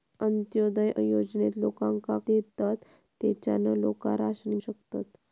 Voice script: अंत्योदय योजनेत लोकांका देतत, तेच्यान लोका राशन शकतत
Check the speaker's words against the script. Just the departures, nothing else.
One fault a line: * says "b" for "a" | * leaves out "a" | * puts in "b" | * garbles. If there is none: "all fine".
all fine